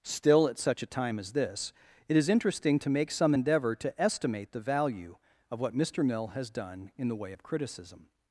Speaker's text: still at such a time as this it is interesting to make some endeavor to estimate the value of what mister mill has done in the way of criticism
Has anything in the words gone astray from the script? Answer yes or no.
no